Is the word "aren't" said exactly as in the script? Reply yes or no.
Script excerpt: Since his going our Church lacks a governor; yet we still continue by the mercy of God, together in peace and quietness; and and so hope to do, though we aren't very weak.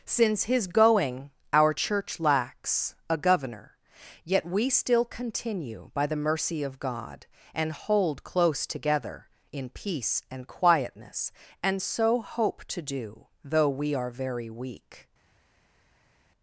no